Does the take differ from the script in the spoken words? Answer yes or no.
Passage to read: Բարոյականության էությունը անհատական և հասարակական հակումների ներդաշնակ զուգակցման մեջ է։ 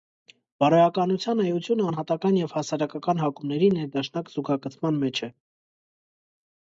no